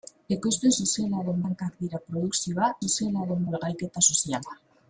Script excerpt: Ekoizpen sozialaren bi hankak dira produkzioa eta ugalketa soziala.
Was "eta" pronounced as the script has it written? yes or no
no